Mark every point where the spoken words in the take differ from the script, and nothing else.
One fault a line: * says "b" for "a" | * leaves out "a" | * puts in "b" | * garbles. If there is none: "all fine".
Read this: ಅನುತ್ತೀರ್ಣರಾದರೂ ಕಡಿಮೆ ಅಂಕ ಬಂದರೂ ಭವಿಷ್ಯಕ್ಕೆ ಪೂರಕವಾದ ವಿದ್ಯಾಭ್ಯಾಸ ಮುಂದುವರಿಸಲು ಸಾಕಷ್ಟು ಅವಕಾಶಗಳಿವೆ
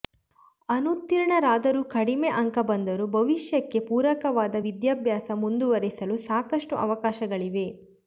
all fine